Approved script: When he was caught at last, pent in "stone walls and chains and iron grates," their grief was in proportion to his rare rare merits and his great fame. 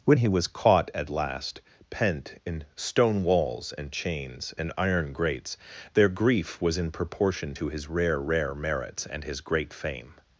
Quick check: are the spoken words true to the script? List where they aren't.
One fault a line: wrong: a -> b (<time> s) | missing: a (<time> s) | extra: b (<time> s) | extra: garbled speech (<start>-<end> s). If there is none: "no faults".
no faults